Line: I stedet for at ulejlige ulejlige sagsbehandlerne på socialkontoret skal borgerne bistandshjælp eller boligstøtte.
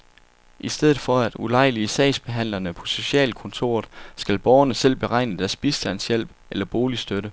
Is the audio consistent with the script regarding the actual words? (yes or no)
no